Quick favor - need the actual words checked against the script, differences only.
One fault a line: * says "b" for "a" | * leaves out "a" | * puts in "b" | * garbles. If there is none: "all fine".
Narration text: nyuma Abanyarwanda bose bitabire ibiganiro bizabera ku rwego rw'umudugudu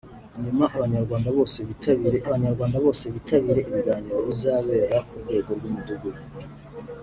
* puts in "Abanyarwanda bose bitabire"